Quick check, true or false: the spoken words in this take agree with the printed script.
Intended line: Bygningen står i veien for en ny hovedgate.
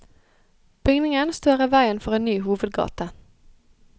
true